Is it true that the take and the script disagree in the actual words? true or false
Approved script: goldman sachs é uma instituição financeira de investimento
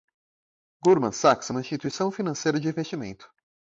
false